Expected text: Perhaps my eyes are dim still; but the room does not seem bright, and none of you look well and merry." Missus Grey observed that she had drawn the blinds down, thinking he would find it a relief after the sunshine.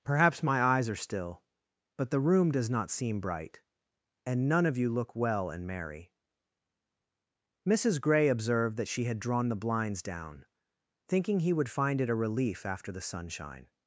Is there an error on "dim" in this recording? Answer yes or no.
yes